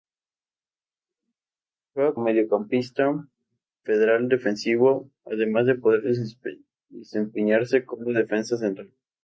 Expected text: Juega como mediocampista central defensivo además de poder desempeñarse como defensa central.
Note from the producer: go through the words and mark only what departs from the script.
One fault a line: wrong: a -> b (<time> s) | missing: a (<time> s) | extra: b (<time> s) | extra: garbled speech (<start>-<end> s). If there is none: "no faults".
missing: como (2.1 s)